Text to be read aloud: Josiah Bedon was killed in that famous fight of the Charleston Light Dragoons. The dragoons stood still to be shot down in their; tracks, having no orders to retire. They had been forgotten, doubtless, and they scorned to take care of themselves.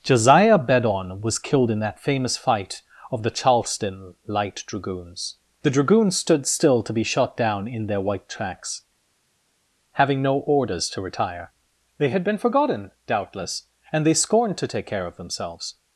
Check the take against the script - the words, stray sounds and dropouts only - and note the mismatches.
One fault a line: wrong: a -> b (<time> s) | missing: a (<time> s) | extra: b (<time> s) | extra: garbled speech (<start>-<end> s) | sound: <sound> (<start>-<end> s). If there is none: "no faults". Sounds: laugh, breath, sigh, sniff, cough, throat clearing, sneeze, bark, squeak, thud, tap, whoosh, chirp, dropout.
extra: white (8.0 s)